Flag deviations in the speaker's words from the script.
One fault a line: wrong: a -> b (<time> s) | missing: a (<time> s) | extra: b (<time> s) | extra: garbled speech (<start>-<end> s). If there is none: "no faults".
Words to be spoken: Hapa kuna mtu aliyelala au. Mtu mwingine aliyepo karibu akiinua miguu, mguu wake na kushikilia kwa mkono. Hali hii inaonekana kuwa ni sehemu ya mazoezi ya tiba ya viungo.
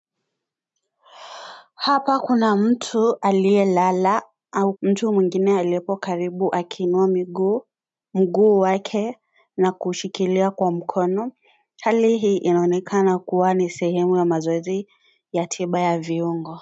no faults